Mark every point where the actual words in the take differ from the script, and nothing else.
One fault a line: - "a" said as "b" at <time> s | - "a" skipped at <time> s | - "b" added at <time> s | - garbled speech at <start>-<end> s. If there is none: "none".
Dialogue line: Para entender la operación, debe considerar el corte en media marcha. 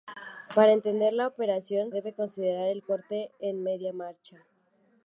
none